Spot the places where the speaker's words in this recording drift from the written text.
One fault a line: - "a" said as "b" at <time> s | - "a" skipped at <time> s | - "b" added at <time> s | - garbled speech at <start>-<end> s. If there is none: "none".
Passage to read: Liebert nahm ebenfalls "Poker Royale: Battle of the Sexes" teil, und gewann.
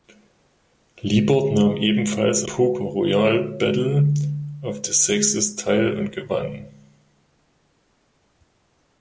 none